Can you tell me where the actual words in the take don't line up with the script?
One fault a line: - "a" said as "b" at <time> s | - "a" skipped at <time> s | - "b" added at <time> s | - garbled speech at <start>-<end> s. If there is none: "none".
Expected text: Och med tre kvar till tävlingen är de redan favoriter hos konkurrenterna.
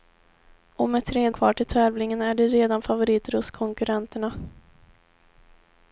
none